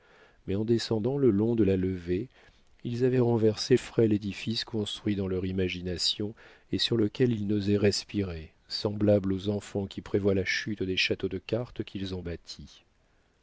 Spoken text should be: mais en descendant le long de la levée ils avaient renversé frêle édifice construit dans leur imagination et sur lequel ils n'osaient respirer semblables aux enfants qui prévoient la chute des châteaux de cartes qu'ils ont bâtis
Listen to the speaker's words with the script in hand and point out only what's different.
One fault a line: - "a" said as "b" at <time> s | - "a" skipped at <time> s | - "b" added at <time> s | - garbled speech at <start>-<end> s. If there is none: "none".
none